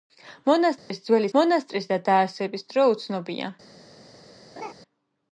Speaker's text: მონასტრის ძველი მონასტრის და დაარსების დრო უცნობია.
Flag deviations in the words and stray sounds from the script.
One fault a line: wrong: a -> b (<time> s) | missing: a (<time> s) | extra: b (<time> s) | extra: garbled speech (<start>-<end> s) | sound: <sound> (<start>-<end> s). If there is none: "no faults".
sound: dropout (0.8-0.9 s)
sound: laugh (4.6-4.7 s)